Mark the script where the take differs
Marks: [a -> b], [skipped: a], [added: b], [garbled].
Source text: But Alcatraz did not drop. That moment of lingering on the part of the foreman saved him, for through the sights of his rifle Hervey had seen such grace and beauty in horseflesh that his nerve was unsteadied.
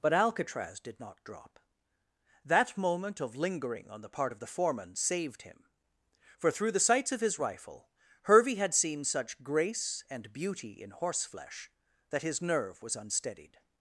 But Alcatraz did not drop. That moment of lingering on the part of the foreman saved him, for through the sights of his rifle Hervey had seen such grace and beauty in horseflesh that his nerve was unsteadied.